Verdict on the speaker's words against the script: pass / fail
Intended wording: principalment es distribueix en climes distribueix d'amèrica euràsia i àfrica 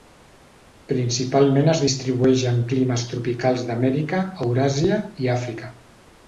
fail